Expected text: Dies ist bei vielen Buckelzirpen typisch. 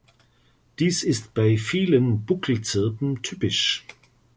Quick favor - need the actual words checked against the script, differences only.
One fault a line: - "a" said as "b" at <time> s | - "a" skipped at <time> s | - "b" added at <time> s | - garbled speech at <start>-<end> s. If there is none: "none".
none